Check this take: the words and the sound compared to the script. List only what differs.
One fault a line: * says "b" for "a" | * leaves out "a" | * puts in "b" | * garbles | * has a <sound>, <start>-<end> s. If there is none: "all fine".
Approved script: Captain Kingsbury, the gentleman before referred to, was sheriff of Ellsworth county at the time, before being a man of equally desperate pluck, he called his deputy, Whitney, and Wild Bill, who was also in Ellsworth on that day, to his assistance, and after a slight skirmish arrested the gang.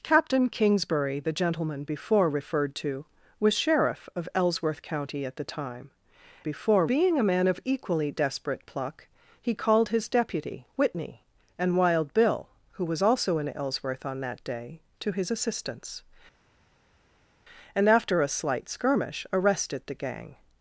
all fine